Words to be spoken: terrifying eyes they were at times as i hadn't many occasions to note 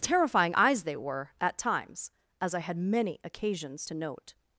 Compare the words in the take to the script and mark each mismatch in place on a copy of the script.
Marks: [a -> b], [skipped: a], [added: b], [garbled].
terrifying eyes they were at times as i [hadn't -> had] many occasions to note